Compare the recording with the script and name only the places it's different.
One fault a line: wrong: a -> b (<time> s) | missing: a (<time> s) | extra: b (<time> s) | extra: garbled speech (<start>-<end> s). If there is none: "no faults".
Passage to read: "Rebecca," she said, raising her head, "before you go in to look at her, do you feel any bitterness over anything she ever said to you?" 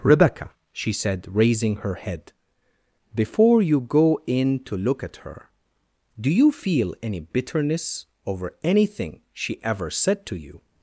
no faults